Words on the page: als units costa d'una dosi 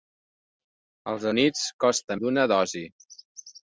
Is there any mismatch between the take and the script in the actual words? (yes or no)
no